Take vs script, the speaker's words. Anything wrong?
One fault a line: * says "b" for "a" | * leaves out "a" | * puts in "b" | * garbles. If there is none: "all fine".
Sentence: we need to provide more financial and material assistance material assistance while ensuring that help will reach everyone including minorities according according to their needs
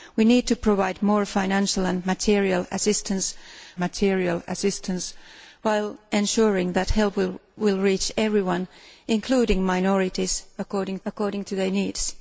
all fine